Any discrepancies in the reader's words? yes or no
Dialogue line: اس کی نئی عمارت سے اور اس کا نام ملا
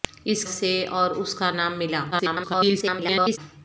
yes